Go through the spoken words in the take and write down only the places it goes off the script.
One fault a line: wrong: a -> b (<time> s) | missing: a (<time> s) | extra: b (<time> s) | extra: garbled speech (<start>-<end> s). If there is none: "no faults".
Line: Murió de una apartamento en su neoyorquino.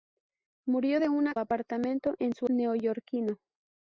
no faults